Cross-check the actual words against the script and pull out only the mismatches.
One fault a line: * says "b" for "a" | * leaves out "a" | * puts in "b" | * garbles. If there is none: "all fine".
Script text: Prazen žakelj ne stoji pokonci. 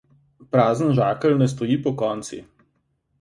all fine